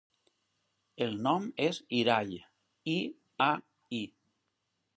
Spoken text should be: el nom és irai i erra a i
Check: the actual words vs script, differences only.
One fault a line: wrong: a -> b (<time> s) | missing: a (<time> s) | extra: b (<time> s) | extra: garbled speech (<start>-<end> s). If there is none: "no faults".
missing: erra (3.0 s)